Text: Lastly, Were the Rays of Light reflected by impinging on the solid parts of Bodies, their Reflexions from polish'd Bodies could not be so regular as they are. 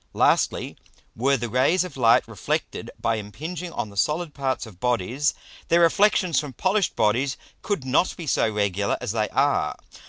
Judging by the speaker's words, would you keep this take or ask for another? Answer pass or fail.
pass